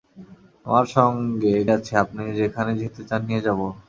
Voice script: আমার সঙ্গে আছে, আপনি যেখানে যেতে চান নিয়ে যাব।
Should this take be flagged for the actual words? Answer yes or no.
no